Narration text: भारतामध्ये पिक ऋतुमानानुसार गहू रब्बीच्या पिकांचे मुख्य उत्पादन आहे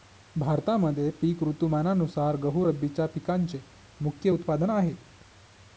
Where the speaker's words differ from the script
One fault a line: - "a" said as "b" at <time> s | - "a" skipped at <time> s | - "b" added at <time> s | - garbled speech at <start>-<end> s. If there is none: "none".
none